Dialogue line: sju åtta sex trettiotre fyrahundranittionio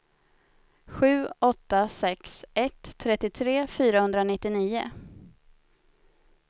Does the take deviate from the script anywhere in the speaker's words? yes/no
yes